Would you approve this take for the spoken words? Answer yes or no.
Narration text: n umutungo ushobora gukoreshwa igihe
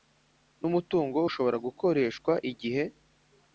yes